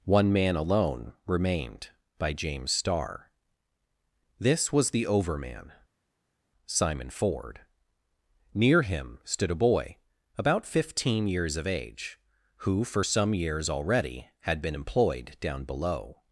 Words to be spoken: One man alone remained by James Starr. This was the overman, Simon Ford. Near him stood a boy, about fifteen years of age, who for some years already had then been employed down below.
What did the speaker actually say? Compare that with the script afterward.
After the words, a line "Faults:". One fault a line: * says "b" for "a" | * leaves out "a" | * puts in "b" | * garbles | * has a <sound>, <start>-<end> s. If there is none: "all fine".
One man alone remained by James Starr. This was the overman, Simon Ford. Near him stood a boy, about fifteen years of age, who for some years already had been employed down below.
Faults:
* leaves out "then"